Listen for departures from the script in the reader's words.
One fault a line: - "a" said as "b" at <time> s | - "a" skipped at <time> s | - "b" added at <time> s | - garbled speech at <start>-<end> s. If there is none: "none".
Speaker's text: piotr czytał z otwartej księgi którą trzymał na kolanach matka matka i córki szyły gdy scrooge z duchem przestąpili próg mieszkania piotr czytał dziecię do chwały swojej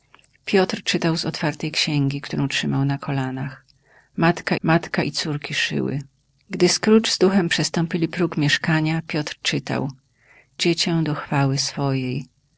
none